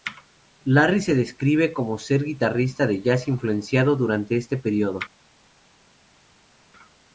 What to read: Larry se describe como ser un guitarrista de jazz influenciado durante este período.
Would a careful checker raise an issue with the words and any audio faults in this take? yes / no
no